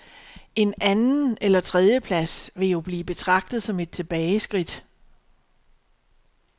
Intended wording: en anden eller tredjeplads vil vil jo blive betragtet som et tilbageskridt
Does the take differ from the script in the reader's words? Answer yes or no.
yes